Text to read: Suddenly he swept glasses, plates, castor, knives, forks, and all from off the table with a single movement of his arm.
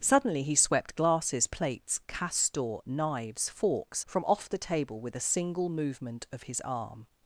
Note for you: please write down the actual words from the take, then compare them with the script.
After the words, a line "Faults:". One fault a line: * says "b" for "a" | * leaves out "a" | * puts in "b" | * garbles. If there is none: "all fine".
Suddenly he swept glasses, plates, castor, knives, forks, from off the table with a single movement of his arm.
Faults:
* leaves out "and all"